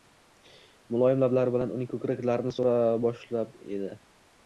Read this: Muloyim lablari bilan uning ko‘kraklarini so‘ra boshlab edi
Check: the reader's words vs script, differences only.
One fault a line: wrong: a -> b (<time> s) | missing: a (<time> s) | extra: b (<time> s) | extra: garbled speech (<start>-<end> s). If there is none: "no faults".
no faults